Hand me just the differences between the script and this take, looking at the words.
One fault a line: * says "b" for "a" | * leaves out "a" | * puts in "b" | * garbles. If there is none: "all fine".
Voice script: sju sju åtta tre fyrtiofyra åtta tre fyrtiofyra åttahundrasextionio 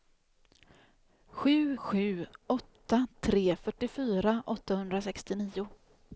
* leaves out "åtta tre fyrtiofyra"